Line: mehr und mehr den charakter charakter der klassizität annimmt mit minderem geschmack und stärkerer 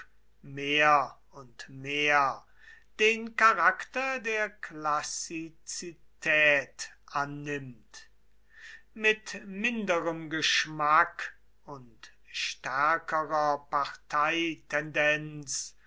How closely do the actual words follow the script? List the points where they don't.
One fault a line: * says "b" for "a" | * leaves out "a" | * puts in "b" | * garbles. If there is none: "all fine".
* leaves out "charakter"